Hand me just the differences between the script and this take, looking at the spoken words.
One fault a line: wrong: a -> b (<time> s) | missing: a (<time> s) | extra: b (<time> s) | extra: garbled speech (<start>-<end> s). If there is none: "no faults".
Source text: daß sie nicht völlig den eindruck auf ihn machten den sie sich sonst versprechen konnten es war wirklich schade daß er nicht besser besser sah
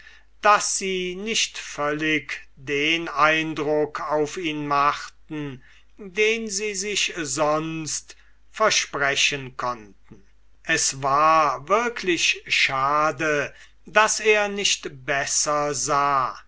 missing: besser (15.8 s)